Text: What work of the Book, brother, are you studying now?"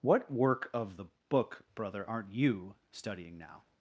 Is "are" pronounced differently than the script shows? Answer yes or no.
yes